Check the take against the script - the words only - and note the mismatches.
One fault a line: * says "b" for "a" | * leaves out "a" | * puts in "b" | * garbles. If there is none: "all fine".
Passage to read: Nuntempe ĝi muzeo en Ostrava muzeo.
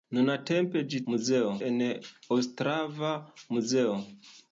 all fine